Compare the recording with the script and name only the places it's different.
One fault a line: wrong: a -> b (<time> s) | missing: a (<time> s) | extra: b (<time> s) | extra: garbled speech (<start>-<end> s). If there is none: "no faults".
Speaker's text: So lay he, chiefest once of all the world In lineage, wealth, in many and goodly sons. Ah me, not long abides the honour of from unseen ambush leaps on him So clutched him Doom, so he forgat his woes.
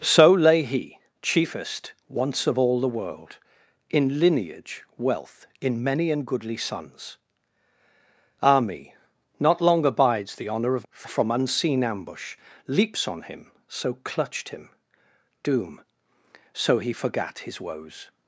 no faults